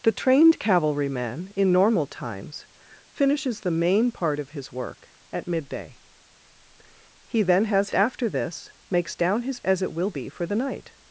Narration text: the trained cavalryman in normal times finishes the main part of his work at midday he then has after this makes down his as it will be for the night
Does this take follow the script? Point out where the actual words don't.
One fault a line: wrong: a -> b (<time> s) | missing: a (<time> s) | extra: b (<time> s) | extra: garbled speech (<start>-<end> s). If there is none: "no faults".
no faults